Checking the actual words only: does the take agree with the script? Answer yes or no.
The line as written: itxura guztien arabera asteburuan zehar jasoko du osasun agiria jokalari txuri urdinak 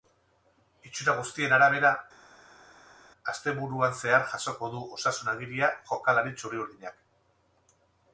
yes